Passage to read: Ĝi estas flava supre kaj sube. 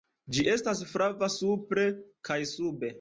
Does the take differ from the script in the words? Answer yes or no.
no